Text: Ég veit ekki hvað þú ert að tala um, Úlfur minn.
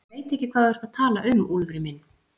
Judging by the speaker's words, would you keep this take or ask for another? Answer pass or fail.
pass